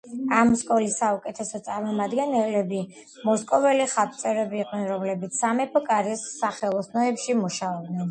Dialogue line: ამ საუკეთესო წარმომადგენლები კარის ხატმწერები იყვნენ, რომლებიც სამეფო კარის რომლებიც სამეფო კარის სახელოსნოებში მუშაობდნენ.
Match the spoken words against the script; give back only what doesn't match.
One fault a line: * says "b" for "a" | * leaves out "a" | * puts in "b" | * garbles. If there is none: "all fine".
* puts in "სკოლის"
* says "მოსკოველი" for "კარის"
* leaves out "რომლებიც სამეფო კარის"